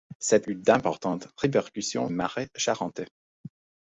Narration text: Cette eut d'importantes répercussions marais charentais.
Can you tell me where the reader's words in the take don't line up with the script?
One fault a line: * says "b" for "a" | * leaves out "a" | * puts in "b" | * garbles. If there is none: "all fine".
all fine